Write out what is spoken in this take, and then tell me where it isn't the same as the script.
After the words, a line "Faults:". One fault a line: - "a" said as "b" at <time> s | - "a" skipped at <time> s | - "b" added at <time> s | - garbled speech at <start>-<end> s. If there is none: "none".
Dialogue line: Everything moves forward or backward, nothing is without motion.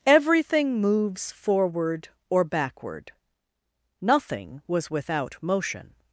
Everything moves forward or backward, nothing was without motion.
Faults:
- "is" said as "was" at 4.6 s